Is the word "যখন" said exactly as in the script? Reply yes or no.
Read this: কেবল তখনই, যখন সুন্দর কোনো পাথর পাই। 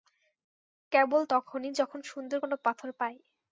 yes